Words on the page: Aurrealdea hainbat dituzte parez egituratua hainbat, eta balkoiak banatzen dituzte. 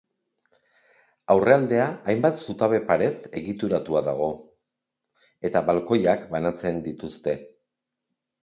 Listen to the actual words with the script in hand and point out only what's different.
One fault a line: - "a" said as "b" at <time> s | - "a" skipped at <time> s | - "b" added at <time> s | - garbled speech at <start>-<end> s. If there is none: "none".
- "dituzte" said as "zutabe" at 2.5 s
- "hainbat" said as "dago" at 4.1 s